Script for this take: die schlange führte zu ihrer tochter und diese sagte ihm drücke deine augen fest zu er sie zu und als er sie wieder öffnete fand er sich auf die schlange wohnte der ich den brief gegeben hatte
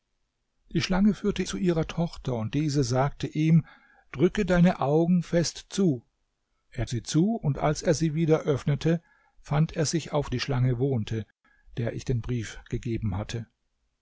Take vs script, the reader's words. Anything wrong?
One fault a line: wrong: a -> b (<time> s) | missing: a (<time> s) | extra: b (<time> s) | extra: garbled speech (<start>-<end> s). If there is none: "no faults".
no faults